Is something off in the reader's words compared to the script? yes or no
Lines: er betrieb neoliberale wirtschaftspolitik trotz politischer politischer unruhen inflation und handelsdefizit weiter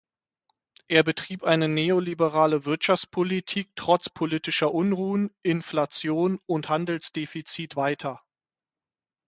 yes